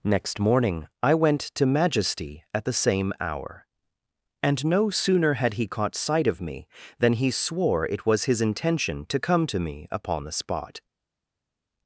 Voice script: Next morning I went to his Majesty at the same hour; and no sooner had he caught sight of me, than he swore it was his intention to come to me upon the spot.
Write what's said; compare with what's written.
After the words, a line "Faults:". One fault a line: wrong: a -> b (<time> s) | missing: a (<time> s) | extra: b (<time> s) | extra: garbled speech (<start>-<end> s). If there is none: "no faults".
Next morning I went to Majesty at the same hour; and no sooner had he caught sight of me, than he swore it was his intention to come to me upon the spot.
Faults:
missing: his (1.6 s)